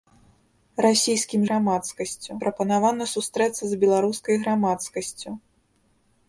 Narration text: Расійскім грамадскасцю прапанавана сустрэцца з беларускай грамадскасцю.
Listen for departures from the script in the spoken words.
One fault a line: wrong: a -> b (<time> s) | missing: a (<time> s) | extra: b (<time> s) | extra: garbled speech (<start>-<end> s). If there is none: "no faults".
no faults